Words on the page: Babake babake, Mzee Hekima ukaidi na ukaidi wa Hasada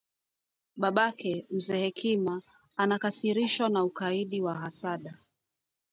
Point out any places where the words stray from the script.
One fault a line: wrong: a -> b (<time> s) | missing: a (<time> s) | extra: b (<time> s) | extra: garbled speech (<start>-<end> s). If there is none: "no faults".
missing: babake (1.4 s)
wrong: ukaidi -> anakasirishwa (2.8 s)